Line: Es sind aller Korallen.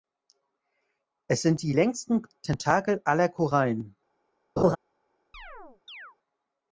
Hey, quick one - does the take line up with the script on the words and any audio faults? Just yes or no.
no